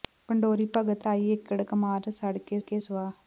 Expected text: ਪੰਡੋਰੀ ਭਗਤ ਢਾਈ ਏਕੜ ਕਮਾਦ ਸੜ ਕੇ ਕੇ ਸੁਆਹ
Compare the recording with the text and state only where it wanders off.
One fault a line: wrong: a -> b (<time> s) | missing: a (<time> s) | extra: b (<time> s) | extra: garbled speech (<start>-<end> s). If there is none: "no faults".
no faults